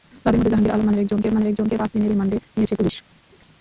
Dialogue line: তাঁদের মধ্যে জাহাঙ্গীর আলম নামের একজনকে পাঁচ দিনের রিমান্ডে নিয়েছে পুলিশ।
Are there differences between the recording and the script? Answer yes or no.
yes